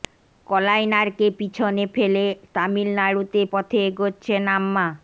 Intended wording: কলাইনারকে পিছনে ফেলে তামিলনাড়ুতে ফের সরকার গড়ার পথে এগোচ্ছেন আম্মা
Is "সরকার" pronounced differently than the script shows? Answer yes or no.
yes